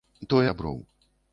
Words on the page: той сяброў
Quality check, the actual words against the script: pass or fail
pass